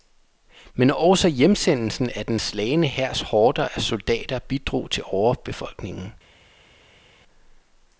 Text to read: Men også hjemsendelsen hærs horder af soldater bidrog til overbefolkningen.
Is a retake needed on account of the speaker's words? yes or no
yes